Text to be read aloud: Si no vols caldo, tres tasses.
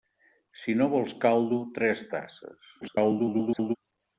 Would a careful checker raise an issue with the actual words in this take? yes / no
yes